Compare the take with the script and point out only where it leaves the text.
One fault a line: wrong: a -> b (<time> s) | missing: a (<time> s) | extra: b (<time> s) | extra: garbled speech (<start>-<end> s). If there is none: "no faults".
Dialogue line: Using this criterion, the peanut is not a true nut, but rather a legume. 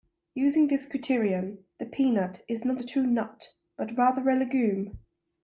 no faults